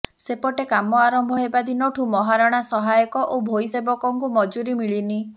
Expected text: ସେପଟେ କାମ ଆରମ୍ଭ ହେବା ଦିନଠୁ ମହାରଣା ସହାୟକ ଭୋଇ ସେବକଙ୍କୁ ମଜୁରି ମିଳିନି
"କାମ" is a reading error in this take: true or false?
false